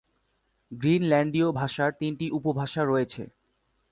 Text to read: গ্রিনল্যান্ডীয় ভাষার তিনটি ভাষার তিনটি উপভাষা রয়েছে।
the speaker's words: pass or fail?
fail